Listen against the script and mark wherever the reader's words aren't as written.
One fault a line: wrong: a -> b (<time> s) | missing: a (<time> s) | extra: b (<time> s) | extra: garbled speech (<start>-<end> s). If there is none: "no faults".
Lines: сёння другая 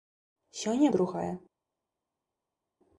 no faults